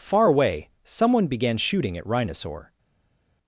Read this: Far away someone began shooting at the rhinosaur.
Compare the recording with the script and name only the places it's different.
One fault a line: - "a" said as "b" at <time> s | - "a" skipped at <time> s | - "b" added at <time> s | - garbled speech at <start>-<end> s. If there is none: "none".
- "the" skipped at 2.1 s